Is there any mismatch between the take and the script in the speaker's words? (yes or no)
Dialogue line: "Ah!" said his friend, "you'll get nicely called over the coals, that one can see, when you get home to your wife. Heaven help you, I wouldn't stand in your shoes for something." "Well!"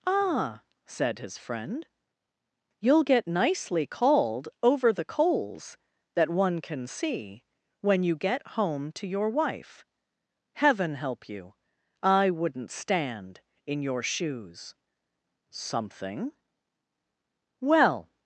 yes